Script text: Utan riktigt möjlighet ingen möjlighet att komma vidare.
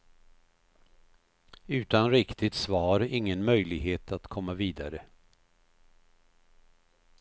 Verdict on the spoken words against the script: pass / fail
fail